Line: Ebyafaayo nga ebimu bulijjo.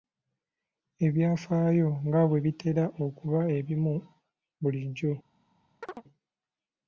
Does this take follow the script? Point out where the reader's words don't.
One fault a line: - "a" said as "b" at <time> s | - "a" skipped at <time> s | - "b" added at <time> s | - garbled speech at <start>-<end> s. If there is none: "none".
- "bwe bitera okuba" added at 2.3 s